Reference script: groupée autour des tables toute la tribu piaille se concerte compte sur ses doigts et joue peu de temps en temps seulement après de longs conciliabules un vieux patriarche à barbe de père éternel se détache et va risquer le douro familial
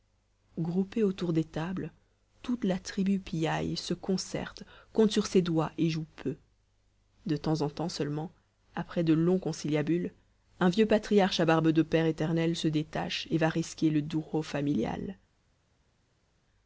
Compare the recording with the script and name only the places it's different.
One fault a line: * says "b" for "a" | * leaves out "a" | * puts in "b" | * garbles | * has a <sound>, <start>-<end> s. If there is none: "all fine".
all fine